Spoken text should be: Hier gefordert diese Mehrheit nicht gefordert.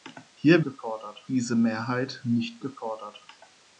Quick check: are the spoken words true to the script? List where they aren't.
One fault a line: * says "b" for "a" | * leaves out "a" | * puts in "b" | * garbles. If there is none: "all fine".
all fine